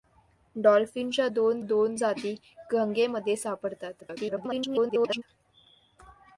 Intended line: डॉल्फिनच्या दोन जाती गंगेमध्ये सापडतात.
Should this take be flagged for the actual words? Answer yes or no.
yes